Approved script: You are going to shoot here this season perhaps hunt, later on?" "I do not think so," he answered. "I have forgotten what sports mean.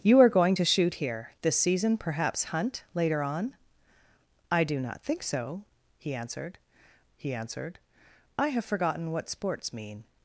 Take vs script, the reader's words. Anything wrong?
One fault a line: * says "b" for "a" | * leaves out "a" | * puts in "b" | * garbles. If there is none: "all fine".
* puts in "he answered"